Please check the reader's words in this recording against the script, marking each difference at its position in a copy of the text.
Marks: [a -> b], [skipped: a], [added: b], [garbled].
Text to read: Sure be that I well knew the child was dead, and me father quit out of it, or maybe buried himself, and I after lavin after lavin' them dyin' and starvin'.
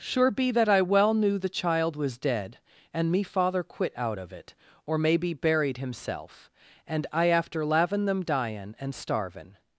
Sure be that I well knew the child was dead, and me father quit out of it, or maybe buried himself, and I after lavin [skipped: after lavin'] them dyin' and starvin'.